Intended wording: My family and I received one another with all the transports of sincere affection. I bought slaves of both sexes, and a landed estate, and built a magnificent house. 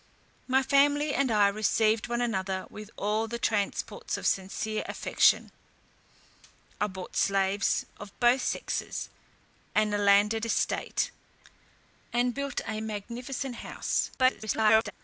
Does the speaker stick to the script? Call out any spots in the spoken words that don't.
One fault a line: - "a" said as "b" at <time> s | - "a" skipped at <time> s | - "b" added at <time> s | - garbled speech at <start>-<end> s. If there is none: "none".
- garbled speech at 14.2-14.9 s